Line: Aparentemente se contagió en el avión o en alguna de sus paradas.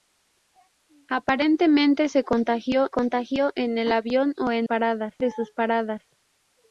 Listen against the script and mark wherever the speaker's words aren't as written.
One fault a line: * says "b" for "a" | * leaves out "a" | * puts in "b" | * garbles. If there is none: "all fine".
* puts in "contagió"
* says "paradas" for "alguna"